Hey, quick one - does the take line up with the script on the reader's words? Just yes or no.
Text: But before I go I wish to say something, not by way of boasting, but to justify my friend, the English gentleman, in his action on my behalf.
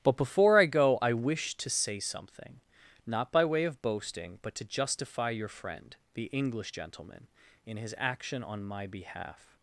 no